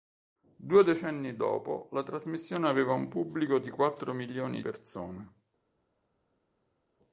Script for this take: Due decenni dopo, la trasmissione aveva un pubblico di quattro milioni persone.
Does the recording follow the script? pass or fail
pass